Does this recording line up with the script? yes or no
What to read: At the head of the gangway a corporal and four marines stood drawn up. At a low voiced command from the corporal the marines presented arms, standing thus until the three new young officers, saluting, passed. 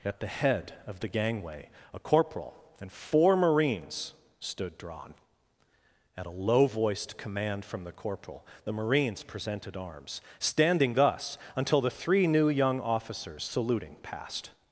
no